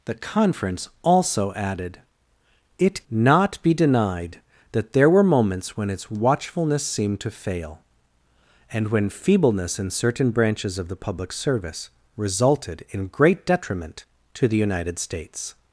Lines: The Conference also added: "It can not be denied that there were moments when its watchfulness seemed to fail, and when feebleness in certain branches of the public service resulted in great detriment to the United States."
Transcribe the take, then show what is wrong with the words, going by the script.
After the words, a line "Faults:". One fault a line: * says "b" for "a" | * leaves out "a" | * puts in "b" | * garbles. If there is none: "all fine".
The Conference also added: "It not be denied that there were moments when its watchfulness seemed to fail, and when feebleness in certain branches of the public service resulted in great detriment to the United States."
Faults:
* leaves out "can"